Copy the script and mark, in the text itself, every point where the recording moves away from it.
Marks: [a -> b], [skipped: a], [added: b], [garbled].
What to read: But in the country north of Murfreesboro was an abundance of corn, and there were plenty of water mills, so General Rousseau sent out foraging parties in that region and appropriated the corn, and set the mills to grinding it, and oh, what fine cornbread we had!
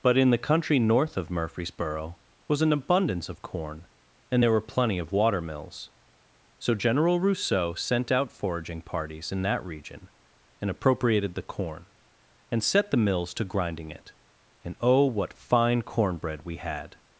But in the country north of Murfreesboro was an abundance of corn, and there were plenty of water mills, so General Rousseau sent out foraging parties in that region and appropriated the corn, and set the mills to grinding it, and oh, what fine cornbread we had!